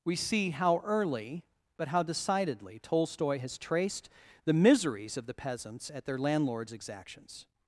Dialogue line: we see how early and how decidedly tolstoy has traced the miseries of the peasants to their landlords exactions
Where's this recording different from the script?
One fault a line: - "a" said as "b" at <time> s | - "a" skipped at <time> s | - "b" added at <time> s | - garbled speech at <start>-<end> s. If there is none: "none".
- "and" said as "but" at 1.8 s
- "to" said as "at" at 5.9 s